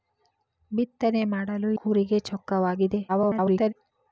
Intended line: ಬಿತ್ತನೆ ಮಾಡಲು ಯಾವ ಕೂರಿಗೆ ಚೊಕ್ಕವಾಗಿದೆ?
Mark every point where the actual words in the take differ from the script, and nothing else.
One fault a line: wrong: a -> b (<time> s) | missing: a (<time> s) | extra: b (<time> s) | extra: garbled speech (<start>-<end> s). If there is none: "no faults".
missing: ಯಾವ (1.7 s)
extra: garbled speech (3.1-3.7 s)